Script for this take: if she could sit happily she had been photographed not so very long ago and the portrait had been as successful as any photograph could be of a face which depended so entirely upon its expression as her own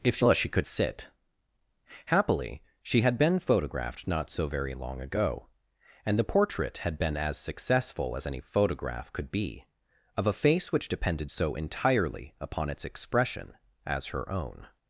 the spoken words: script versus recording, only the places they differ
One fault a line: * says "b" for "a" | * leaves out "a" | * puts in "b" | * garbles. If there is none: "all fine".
all fine